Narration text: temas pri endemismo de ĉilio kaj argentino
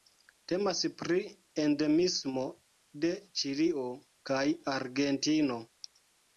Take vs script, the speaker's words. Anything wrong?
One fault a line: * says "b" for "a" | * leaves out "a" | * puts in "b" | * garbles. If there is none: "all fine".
all fine